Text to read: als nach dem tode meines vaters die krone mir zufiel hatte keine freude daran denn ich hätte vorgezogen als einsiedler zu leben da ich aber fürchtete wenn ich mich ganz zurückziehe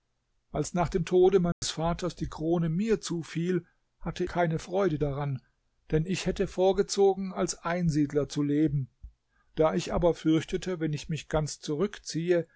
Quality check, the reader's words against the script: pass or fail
pass